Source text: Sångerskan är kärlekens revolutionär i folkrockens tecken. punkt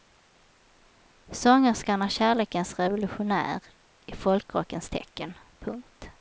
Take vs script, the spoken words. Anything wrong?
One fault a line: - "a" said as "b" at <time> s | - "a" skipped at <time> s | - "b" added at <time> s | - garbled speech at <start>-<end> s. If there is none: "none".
none